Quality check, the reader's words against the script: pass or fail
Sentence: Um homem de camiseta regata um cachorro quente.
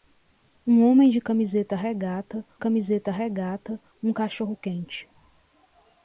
fail